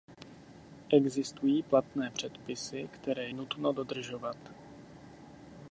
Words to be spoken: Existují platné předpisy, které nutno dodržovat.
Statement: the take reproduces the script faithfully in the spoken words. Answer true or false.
true